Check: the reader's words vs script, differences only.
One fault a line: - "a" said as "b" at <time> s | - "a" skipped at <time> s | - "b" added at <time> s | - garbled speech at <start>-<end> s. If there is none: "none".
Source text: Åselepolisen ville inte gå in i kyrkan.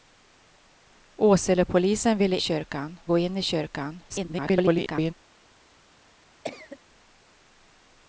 - "inte" said as "kyrkan" at 2.4 s
- garbled speech at 4.1-5.1 s